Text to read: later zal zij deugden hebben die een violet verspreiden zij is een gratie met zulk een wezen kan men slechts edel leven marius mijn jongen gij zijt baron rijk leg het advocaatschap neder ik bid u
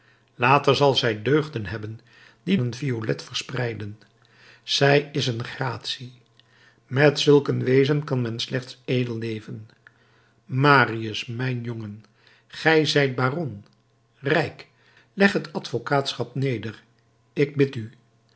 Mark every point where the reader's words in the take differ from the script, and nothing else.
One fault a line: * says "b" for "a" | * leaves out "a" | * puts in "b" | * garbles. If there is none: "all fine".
all fine